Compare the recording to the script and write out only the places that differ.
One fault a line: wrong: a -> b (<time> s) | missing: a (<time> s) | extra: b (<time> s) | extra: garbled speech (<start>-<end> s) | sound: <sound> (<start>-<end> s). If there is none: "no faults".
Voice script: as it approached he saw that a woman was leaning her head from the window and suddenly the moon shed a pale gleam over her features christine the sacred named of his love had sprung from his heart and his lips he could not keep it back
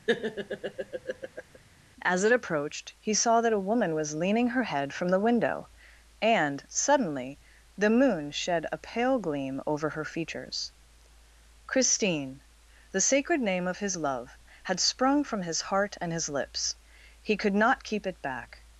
sound: laugh (0.1-1.6 s)
wrong: named -> name (13.4 s)